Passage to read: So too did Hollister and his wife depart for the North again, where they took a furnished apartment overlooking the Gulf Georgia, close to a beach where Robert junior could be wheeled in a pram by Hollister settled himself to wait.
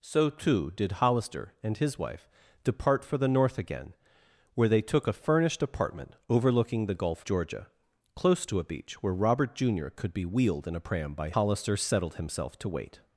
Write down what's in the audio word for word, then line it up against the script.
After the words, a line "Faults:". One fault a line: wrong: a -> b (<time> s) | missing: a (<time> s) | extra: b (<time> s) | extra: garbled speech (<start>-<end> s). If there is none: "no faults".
So too did Hollister and his wife depart for the North again, where they took a furnished apartment overlooking the Gulf Georgia, close to a beach where Robert junior could be wheeled in a pram by Hollister settled himself to wait.
Faults:
no faults